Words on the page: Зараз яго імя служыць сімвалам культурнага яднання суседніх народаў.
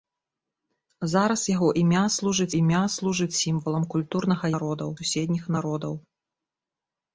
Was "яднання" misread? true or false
true